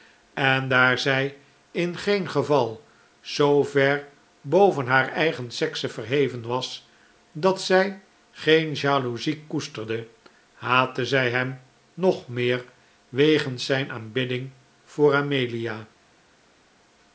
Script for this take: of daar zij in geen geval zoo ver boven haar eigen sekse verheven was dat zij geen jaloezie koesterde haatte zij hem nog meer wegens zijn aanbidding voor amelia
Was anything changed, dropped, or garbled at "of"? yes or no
yes